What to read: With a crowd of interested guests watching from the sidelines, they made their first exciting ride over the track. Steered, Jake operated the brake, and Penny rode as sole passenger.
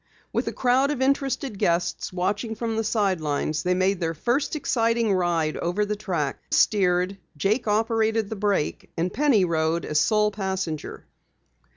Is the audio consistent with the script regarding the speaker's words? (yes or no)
yes